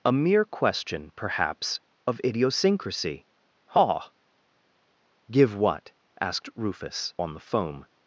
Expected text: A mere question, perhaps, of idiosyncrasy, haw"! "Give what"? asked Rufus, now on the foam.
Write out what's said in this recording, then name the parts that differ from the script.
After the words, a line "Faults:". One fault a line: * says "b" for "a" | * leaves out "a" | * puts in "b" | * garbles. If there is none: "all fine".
A mere question, perhaps, of idiosyncrasy, haw"! "Give what"? asked Rufus, on the foam.
Faults:
* leaves out "now"